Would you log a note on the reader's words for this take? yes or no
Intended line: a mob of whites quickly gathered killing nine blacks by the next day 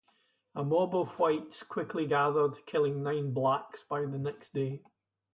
no